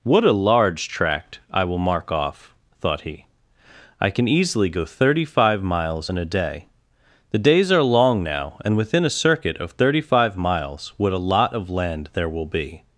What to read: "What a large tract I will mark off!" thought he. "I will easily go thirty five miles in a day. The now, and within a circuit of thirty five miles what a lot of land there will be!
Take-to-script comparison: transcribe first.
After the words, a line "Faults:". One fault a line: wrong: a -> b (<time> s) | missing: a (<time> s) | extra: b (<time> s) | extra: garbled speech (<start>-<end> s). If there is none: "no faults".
"What a large tract I will mark off!" thought he. "I can easily go thirty five miles in a day. The days are long now, and within a circuit of thirty five miles what a lot of land there will be!
Faults:
wrong: will -> can (4.1 s)
extra: days are long (7.4 s)